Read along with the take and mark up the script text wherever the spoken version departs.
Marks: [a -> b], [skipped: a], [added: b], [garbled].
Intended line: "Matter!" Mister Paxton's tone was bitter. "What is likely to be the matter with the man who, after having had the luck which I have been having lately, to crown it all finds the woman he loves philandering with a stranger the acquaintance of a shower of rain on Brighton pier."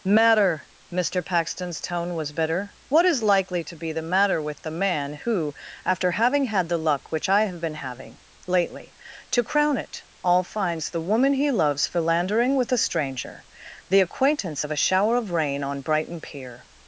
"Matter!" Mister Paxton's tone was bitter. "What is likely to be the matter with the man who, after having had the luck which I have been having lately, to crown it all finds the woman he loves philandering with a stranger the acquaintance of a shower of rain on Brighton pier."